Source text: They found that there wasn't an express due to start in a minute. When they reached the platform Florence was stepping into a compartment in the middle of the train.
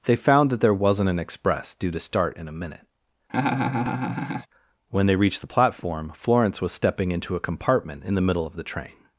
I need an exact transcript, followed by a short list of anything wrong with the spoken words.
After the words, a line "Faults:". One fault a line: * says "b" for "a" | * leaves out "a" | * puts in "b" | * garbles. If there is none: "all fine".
They found that there wasn't an express due to start in a minute. When they reached the platform Florence was stepping into a compartment in the middle of the train.
Faults:
all fine